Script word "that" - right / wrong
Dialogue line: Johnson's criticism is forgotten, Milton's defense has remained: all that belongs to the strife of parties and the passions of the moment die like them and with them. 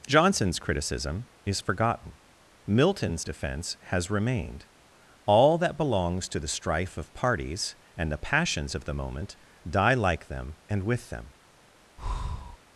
right